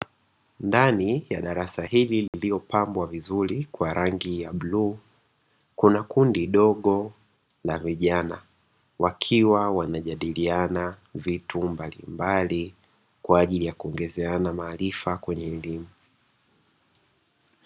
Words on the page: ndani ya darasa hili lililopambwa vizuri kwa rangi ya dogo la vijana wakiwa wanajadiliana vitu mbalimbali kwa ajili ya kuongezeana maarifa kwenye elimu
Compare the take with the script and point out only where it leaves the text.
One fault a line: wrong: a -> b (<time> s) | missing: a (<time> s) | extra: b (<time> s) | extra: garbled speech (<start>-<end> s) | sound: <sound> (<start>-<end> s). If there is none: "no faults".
sound: dropout (2.3-2.3 s)
extra: bluu kuna kundi (4.5 s)